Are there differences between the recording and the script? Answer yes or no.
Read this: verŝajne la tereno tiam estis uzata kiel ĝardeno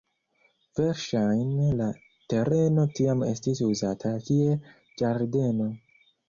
no